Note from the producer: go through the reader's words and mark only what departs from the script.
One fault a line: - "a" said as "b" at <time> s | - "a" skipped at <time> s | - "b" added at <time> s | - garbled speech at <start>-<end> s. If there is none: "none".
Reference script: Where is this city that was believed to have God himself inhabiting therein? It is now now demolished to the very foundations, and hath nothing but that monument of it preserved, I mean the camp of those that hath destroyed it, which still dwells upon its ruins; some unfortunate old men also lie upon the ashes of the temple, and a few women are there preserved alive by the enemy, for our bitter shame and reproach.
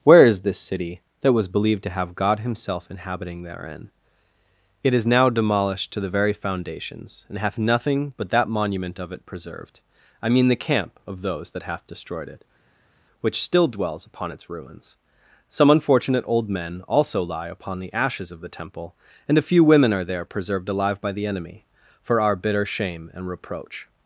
- "now" skipped at 5.3 s